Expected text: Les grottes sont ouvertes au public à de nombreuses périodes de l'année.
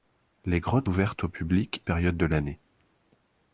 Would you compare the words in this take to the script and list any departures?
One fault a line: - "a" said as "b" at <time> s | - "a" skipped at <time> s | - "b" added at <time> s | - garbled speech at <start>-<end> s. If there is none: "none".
- "sont" skipped at 0.9 s
- "à de nombreuses" skipped at 1.8 s